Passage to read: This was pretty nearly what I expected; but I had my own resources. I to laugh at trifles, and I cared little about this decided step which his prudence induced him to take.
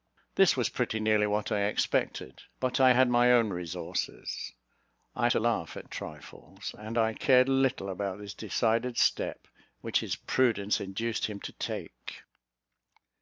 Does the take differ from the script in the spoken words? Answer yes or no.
no